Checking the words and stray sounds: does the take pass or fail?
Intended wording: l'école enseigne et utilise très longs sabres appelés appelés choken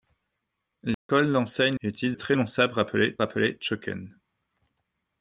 fail